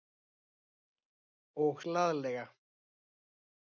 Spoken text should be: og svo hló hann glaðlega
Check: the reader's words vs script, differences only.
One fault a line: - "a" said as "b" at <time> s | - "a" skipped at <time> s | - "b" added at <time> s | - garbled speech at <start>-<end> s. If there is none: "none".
- "svo hló hann" skipped at 1.8 s